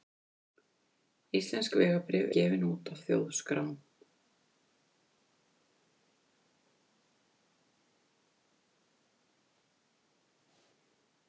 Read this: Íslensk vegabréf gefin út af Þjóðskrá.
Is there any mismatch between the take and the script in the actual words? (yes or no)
no